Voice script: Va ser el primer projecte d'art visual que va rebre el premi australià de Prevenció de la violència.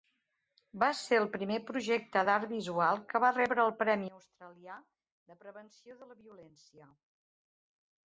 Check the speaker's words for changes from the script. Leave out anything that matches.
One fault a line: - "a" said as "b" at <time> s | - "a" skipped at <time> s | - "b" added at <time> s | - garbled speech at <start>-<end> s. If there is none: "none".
none